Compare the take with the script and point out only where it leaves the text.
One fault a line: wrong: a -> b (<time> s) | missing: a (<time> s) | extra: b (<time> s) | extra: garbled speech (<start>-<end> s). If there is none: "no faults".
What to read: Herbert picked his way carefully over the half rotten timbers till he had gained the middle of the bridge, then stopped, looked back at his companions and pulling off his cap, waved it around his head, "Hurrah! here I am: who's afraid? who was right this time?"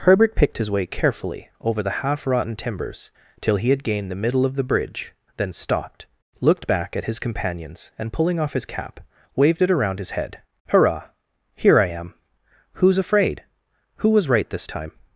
no faults